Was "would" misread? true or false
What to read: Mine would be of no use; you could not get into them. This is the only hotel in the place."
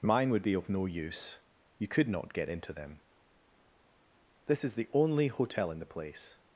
false